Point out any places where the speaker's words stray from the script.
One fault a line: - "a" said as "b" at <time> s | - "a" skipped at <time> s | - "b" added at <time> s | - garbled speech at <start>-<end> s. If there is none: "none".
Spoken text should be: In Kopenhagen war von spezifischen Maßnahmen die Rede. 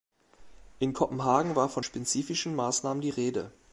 none